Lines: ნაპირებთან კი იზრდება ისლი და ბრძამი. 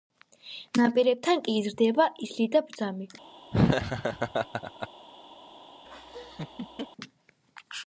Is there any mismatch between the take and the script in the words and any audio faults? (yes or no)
yes